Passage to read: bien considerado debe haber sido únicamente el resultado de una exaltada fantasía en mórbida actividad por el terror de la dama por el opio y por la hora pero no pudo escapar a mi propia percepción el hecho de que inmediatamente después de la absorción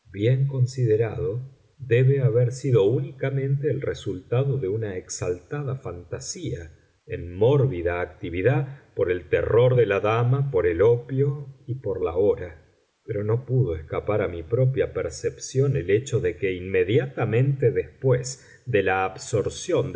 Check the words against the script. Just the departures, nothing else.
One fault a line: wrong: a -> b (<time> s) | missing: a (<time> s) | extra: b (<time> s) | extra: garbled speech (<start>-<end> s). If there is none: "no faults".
no faults